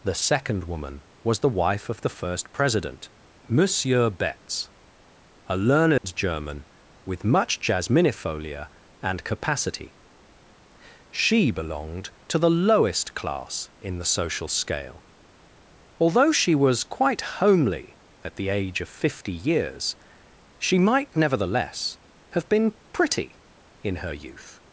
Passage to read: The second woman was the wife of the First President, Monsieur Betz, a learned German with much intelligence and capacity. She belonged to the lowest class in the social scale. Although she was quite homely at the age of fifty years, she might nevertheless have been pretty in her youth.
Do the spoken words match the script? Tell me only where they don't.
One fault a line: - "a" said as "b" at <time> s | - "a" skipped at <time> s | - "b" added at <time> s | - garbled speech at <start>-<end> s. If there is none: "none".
- "intelligence" said as "jasminifolia" at 7.6 s